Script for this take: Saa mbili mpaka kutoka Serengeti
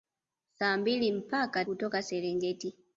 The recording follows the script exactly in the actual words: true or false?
true